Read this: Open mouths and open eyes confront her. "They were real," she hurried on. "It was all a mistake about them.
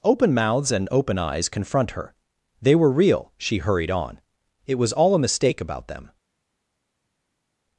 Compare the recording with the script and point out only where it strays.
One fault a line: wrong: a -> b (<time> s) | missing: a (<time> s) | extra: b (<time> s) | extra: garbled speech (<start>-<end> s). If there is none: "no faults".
no faults